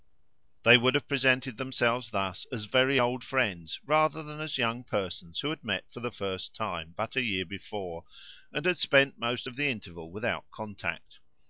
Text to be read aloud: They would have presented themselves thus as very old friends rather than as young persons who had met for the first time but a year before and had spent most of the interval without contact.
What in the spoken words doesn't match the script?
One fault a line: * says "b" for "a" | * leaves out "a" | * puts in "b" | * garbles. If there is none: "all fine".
all fine